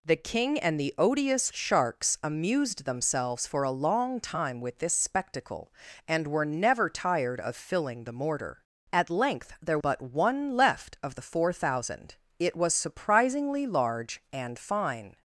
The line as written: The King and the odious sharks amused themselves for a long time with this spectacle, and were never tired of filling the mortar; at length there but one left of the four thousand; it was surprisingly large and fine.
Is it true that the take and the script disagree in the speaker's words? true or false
false